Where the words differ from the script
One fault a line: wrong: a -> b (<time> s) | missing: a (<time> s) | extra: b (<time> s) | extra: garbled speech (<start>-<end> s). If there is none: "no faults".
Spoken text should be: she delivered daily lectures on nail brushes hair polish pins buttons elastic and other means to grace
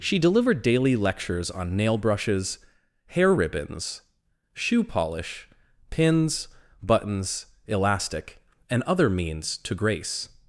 extra: ribbons shoe (3.3 s)